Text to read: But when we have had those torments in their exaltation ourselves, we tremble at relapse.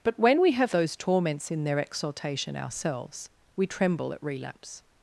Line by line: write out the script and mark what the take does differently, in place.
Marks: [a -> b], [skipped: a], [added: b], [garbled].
But when we have [skipped: had] those torments in their exaltation ourselves, we tremble at relapse.